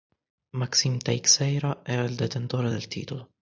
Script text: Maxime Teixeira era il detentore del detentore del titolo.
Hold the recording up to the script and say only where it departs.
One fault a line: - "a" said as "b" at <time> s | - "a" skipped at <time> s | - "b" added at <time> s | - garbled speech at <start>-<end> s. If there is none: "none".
- "detentore del" skipped at 2.9 s